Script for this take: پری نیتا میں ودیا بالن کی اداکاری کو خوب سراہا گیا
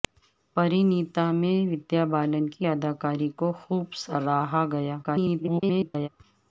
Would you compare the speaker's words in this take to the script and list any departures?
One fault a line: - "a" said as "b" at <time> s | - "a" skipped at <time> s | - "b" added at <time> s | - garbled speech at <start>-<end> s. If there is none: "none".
- garbled speech at 5.0-6.1 s